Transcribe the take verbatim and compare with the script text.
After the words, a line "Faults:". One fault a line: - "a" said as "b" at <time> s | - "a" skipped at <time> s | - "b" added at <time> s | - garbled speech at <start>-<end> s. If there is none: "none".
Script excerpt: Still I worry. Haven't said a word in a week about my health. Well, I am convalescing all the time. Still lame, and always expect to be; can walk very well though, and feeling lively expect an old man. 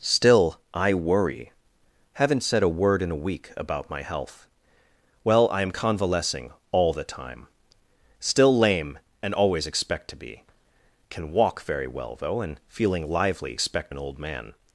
Still I worry. Haven't said a word in a week about my health. Well, I am convalescing all the time. Still lame, and always expect to be; can walk very well though, and feeling lively expect an old man.
Faults:
none